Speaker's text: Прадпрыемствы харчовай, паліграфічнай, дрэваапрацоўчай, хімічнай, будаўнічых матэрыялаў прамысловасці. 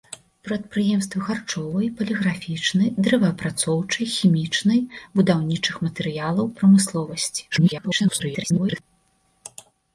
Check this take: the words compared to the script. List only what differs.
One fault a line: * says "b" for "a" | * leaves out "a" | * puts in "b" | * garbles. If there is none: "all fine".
* garbles